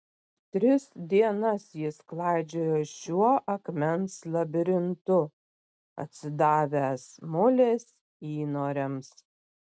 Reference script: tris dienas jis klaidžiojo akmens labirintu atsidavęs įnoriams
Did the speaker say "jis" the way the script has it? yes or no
yes